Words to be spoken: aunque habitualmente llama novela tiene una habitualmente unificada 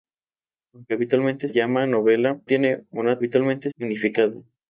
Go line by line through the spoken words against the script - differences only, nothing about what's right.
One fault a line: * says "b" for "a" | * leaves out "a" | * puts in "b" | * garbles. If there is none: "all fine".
all fine